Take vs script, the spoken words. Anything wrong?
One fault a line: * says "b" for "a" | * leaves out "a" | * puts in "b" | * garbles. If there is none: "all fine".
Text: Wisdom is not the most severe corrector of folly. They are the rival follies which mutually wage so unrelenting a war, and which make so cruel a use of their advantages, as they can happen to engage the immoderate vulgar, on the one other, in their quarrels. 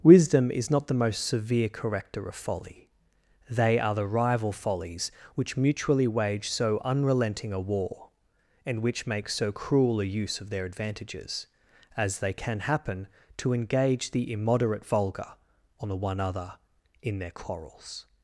all fine